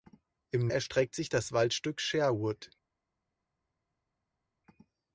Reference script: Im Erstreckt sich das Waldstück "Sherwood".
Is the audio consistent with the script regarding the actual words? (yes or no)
yes